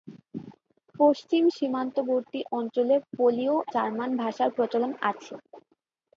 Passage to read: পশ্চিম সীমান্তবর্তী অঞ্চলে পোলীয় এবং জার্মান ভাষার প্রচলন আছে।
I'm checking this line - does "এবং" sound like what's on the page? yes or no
no